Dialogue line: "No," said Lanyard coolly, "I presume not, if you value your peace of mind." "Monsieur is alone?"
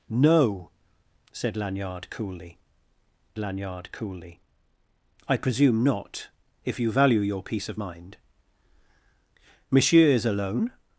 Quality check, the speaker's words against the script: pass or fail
fail